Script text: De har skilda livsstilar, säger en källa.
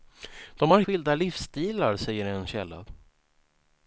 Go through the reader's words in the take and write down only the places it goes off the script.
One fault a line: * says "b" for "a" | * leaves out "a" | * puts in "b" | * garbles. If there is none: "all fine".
all fine